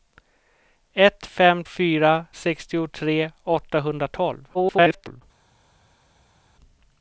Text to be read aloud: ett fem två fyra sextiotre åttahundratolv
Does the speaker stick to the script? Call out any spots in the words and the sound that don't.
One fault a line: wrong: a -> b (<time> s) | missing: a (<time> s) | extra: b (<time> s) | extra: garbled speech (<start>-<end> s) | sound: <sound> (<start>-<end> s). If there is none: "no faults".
missing: två (1.6 s)
extra: garbled speech (4.5-5.2 s)